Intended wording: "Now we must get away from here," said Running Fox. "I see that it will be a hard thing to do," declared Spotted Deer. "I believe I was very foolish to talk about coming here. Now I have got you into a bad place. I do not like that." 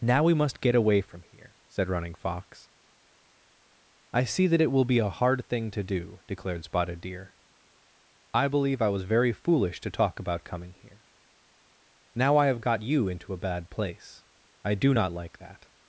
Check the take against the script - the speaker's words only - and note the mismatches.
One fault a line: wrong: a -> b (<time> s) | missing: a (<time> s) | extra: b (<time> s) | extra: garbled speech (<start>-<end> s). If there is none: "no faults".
no faults